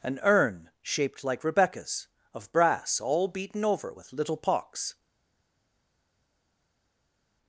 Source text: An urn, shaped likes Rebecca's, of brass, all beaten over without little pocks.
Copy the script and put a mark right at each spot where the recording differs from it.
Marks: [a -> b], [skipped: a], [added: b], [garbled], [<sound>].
An urn, shaped [likes -> like] Rebecca's, of brass, all beaten over [without -> with] little pocks.